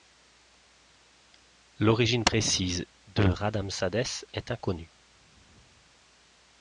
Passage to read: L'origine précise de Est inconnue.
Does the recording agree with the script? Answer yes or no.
no